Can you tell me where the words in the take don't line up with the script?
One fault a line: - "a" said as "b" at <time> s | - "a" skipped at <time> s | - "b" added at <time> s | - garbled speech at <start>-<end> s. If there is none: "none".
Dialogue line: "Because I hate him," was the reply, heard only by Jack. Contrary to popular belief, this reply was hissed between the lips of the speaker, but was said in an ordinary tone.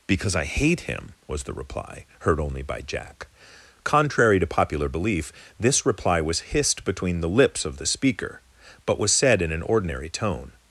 none